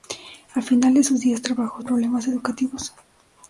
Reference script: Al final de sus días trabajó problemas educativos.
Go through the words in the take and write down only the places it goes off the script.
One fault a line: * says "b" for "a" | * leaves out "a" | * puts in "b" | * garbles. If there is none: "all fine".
all fine